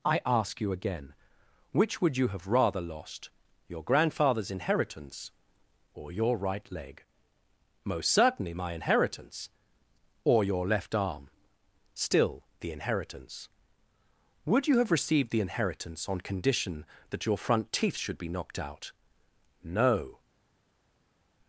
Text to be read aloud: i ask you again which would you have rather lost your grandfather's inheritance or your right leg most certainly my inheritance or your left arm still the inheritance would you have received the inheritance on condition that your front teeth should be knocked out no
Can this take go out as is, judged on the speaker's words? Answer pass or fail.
pass